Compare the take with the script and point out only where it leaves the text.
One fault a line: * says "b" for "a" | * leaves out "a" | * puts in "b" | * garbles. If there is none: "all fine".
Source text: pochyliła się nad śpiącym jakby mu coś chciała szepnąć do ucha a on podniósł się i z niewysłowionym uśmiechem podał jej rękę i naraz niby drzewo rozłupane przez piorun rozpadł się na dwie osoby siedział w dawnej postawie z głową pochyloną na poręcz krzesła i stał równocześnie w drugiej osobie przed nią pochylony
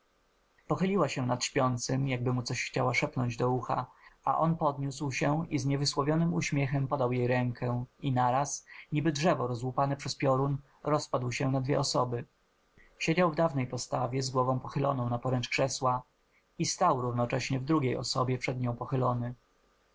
all fine